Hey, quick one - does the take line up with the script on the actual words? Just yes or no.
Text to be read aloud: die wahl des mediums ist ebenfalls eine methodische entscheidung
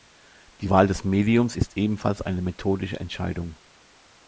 yes